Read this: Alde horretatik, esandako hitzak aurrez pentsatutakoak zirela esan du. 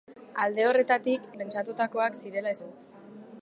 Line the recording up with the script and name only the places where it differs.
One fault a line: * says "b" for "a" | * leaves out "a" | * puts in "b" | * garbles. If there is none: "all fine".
* leaves out "esandako hitzak aurrez"
* leaves out "esan"